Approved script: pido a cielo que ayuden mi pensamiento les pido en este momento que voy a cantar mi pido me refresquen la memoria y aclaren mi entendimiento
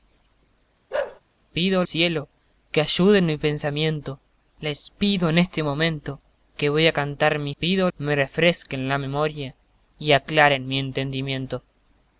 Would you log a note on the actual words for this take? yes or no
no